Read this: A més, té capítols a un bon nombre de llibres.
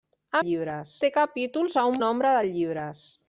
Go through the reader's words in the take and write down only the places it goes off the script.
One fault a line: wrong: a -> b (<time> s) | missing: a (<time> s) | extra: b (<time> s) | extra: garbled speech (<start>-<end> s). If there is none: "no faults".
wrong: més -> llibres (0.4 s)
missing: bon (2.0 s)